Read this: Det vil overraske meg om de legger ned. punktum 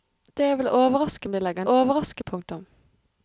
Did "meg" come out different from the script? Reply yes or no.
yes